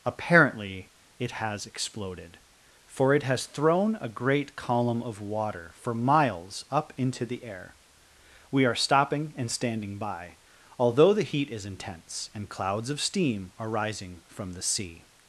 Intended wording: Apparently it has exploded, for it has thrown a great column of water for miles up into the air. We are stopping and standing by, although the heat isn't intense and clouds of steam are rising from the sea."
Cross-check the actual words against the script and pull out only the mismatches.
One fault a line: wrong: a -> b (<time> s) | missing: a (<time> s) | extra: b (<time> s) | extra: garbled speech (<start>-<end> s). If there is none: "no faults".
wrong: isn't -> is (11.5 s)